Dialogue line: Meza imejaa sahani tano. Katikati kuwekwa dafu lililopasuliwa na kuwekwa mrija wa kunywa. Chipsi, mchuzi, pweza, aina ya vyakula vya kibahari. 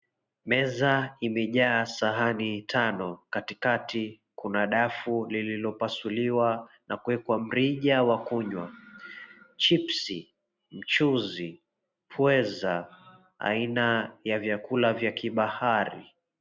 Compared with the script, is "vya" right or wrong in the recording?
right